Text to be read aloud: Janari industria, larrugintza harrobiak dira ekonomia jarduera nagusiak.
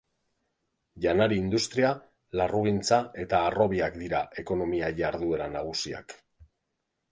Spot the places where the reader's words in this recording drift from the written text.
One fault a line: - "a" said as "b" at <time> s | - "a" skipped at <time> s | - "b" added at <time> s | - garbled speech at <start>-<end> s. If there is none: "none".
- "eta" added at 3.3 s